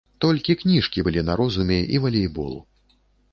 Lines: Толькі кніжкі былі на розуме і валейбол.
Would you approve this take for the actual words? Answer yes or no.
yes